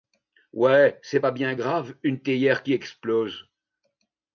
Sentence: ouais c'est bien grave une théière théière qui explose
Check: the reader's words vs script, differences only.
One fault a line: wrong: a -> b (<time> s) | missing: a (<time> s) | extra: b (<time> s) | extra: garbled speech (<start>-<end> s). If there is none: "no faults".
extra: pas (1.2 s)
missing: théière (2.6 s)